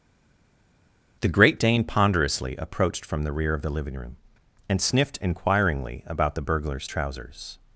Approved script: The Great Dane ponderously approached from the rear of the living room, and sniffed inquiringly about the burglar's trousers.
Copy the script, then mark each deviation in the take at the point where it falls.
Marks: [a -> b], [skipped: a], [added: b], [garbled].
The Great Dane ponderously approached from the rear of the living room, and sniffed inquiringly about the burglar's trousers.